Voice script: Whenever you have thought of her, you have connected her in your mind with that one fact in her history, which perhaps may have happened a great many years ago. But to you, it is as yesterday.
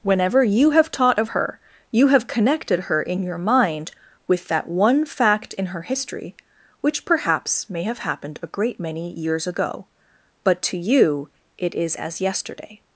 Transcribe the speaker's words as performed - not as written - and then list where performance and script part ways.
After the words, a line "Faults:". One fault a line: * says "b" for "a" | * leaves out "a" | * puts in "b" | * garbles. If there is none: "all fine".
Whenever you have taught of her, you have connected her in your mind with that one fact in her history, which perhaps may have happened a great many years ago. But to you, it is as yesterday.
Faults:
* says "taught" for "thought"